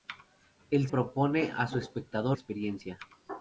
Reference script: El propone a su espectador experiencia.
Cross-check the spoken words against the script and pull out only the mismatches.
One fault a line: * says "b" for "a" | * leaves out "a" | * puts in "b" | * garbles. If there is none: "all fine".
all fine